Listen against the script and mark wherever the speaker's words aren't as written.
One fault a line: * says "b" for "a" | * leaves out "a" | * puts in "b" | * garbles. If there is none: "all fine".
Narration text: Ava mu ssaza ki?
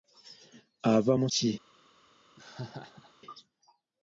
* leaves out "ssaza"